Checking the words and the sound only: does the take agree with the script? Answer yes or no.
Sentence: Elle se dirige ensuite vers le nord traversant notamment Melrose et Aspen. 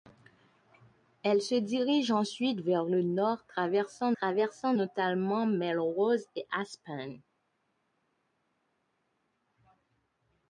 no